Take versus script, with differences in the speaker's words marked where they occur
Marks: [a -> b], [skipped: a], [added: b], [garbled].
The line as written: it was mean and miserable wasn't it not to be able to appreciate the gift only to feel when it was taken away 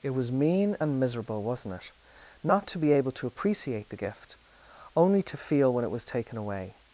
it was mean and miserable wasn't it not to be able to appreciate the gift only to feel when it was taken away